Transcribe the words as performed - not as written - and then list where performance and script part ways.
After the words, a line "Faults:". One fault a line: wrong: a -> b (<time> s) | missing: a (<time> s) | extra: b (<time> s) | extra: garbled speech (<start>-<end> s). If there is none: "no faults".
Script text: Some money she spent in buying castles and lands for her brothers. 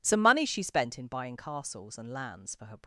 Some money she spent in buying castles and lands for her.
Faults:
missing: brothers (2.8 s)